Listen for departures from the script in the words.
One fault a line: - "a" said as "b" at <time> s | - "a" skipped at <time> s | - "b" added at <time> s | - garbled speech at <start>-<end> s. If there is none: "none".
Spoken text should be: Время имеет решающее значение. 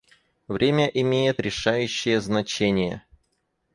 none